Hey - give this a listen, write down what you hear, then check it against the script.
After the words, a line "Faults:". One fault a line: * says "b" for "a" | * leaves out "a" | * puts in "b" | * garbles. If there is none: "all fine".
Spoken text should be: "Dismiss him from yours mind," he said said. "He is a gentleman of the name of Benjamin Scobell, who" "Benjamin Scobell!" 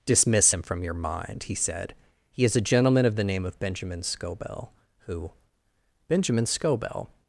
"Dismiss him from your mind," he said. "He is a gentleman of the name of Benjamin Scobell, who" "Benjamin Scobell!"
Faults:
* says "your" for "yours"
* leaves out "said"